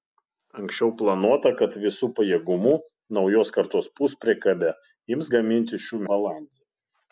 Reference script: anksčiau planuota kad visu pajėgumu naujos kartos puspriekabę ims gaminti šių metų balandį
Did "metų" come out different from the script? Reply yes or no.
yes